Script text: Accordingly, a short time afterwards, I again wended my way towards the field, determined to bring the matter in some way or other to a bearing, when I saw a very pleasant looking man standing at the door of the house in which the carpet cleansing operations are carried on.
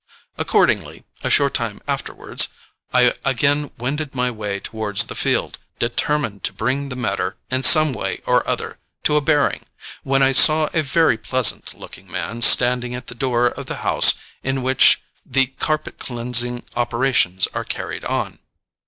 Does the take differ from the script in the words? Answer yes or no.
no